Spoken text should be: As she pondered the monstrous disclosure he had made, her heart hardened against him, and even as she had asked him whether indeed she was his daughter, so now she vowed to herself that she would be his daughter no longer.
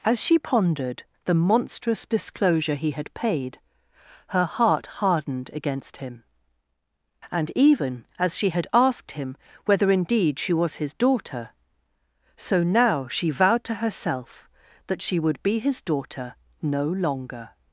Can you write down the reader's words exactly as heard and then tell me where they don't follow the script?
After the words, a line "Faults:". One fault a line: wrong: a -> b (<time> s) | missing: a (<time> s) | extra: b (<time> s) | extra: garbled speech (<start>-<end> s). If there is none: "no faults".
As she pondered the monstrous disclosure he had paid, her heart hardened against him, and even as she had asked him whether indeed she was his daughter, so now she vowed to herself that she would be his daughter no longer.
Faults:
wrong: made -> paid (3.1 s)